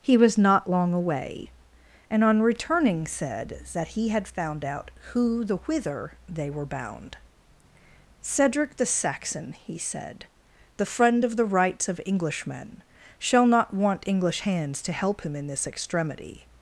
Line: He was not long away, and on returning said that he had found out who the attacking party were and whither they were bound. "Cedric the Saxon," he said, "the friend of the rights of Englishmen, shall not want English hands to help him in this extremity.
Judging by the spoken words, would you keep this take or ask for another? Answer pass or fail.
fail